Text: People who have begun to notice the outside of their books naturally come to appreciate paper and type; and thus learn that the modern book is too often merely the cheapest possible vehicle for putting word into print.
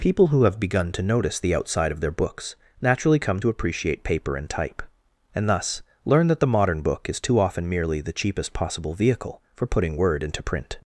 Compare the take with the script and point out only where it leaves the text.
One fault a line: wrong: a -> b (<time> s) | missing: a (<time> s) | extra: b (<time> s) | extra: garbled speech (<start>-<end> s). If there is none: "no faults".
no faults